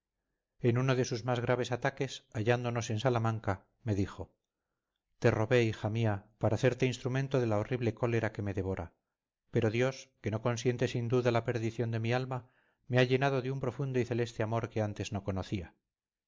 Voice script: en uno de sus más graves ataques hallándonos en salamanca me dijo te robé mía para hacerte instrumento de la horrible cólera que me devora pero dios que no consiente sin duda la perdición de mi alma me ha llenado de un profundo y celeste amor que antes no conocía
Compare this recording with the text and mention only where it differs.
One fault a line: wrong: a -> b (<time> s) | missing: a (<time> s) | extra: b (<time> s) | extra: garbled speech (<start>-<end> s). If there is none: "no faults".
extra: hija (5.6 s)